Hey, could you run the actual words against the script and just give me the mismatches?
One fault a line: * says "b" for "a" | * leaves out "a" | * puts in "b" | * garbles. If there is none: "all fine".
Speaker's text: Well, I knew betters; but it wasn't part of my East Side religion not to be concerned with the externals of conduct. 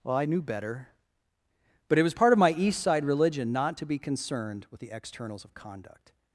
* says "better" for "betters"
* says "was" for "wasn't"